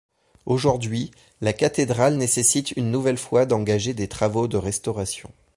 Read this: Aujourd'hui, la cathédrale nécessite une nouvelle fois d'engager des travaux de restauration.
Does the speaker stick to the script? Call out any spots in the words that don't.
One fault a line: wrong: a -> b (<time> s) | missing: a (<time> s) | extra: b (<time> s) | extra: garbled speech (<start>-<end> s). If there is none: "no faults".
no faults